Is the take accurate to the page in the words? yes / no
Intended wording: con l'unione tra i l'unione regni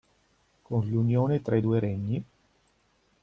no